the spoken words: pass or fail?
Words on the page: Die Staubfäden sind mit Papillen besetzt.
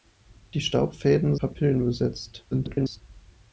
fail